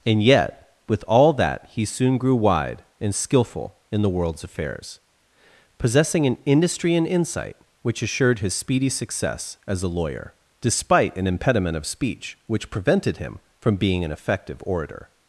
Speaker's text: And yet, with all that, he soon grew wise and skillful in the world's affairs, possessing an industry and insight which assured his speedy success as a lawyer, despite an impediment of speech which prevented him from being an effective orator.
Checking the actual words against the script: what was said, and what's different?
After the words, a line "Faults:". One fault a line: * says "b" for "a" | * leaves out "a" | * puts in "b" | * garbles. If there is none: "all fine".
And yet, with all that, he soon grew wide and skillful in the world's affairs, possessing an industry and insight which assured his speedy success as a lawyer, despite an impediment of speech which prevented him from being an effective orator.
Faults:
* says "wide" for "wise"